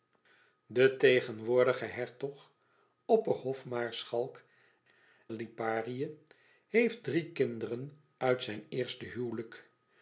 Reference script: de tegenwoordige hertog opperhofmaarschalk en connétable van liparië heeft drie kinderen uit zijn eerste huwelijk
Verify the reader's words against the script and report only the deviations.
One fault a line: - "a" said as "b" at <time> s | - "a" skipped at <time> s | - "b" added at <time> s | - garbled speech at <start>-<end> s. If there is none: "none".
- "en connétable van" skipped at 4.4 s